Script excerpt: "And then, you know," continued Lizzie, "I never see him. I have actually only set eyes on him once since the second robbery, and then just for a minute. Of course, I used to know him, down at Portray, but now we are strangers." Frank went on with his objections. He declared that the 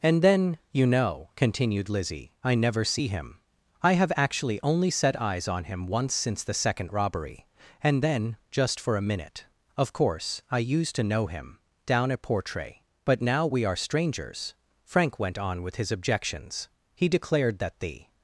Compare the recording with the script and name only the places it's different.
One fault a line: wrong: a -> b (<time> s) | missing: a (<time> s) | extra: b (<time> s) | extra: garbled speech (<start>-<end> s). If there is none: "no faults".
no faults